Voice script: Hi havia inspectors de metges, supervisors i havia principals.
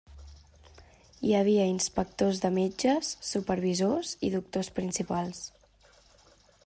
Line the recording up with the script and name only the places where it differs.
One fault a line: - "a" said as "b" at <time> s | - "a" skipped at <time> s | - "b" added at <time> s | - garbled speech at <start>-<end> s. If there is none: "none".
- "havia" said as "doctors" at 4.4 s